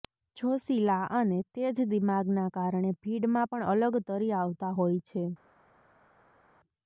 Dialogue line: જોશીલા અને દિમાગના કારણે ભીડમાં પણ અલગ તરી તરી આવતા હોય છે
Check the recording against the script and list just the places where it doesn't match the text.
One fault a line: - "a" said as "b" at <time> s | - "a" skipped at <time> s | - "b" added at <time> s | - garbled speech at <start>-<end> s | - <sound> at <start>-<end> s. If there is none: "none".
- "તેજ" added at 1.6 s
- "તરી" skipped at 4.3 s